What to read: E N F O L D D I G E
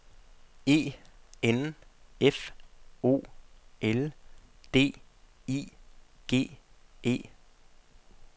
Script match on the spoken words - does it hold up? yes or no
no